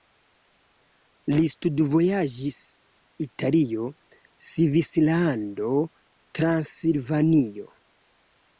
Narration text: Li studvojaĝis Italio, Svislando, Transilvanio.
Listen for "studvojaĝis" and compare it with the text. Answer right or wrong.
right